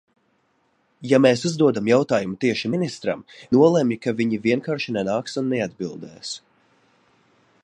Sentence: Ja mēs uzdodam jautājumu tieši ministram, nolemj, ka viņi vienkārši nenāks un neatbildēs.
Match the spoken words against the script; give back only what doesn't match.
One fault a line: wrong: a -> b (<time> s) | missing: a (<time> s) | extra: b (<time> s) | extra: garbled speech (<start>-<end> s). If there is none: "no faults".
no faults